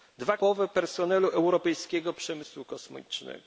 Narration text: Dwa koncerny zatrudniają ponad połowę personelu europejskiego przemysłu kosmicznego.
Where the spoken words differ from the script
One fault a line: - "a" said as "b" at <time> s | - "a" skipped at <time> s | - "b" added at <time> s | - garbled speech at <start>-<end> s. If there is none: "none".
- "koncerny zatrudniają ponad" skipped at 0.4 s